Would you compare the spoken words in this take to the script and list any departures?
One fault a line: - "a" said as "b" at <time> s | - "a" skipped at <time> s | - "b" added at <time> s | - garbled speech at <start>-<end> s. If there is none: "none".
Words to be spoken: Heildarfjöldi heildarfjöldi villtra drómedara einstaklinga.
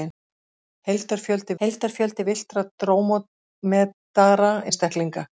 none